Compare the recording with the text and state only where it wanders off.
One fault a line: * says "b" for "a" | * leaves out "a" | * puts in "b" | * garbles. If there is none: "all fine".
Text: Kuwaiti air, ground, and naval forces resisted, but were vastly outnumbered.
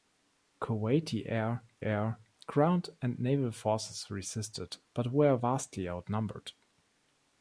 * puts in "air"